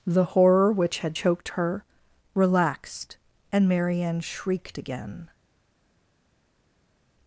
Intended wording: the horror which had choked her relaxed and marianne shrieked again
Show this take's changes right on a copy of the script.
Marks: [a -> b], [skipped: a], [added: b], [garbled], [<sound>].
the horror which had choked her relaxed and marianne shrieked again